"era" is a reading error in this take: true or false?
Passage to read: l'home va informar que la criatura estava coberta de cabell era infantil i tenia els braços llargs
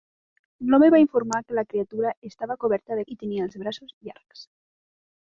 true